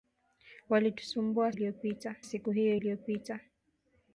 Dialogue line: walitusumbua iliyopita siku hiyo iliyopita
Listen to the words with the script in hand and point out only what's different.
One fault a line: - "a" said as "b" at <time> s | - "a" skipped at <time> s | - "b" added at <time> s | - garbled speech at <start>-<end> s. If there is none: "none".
none